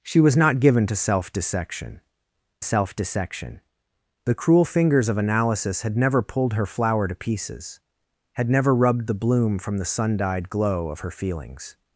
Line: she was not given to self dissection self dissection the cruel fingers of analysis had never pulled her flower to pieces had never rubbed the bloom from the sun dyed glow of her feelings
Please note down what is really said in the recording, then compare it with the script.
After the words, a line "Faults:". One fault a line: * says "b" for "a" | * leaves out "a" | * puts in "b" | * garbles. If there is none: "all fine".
she was not given to self dissection self dissection the cruel fingers of analysis had never pulled her flower to pieces had never rubbed the bloom from the sun dyed glow of her feelings
Faults:
all fine